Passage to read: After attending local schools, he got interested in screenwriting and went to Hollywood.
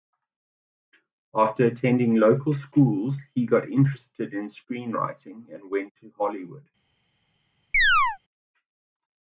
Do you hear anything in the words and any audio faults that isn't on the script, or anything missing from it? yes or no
yes